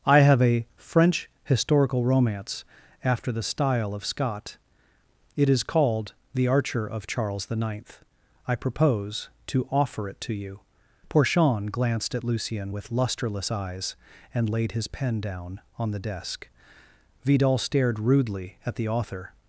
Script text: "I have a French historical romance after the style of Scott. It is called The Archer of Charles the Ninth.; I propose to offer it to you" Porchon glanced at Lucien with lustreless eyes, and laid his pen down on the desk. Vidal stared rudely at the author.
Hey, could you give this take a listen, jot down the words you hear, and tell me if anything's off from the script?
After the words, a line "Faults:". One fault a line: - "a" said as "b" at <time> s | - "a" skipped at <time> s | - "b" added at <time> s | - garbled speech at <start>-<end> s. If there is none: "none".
"I have a French historical romance after the style of Scott. It is called The Archer of Charles the Ninth.; I propose to offer it to you" Porchon glanced at Lucien with lustreless eyes, and laid his pen down on the desk. Vidal stared rudely at the author.
Faults:
none